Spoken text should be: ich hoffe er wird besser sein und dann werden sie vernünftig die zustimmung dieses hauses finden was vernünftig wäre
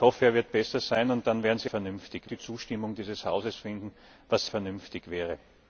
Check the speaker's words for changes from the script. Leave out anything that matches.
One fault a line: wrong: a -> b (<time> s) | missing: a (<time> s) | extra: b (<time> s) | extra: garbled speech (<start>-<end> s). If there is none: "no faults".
no faults